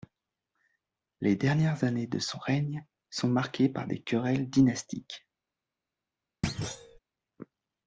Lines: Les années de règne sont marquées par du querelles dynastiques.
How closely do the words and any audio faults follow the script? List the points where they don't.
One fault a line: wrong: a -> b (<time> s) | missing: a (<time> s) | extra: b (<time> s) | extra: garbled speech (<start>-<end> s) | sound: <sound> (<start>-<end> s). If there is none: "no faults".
extra: dernières (1.3 s)
extra: son (2.2 s)
wrong: du -> des (3.8 s)
sound: thud (6.4-7.0 s)